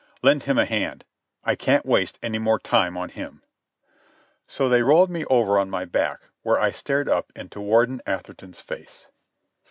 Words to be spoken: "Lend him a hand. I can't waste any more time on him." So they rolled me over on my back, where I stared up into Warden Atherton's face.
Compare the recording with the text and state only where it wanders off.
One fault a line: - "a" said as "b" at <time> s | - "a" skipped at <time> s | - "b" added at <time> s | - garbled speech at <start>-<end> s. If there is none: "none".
none